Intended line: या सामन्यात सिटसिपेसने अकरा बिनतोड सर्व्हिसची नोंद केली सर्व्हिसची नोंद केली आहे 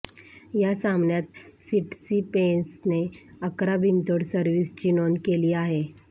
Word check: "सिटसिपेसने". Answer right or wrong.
right